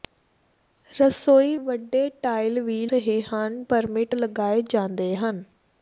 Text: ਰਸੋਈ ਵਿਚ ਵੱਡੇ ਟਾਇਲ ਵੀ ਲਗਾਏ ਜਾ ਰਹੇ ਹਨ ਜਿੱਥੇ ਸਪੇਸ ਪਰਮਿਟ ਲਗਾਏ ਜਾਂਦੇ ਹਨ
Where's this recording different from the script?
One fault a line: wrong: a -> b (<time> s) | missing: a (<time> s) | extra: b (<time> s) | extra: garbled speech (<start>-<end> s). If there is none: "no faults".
missing: ਵਿਚ (1.6 s)
missing: ਲਗਾਏ ਜਾ (2.8 s)
missing: ਜਿੱਥੇ ਸਪੇਸ (3.6 s)